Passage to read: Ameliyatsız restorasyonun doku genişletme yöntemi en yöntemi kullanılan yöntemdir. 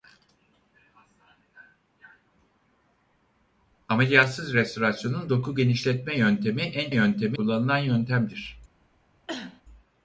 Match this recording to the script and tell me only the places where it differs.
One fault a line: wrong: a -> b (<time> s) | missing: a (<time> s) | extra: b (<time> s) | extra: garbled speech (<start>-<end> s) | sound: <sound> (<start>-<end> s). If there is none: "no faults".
sound: cough (9.3-9.6 s)